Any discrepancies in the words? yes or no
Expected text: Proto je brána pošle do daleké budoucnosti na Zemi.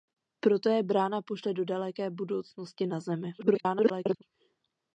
yes